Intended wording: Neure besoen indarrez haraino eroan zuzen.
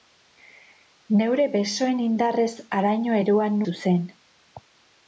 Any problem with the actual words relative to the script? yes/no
no